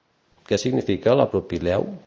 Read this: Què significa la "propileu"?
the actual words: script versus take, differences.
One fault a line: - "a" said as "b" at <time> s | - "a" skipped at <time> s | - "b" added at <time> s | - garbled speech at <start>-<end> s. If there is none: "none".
none